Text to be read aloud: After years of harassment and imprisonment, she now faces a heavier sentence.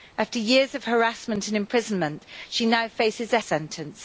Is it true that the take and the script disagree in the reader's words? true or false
true